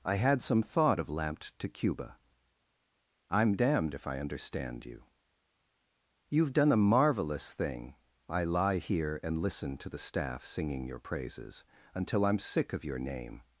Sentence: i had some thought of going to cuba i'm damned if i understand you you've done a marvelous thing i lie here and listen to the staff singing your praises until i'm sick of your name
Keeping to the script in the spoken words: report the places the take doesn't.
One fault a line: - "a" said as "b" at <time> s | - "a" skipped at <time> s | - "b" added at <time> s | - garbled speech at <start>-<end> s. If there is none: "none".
- "going" said as "lamped" at 1.1 s